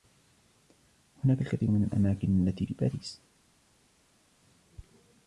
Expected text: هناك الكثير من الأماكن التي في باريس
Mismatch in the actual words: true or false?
false